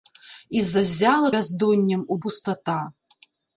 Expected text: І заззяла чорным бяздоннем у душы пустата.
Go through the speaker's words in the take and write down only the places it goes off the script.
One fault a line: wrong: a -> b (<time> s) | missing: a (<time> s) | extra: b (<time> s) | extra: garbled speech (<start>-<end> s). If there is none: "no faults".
missing: чорным (1.3 s)
missing: душы (2.2 s)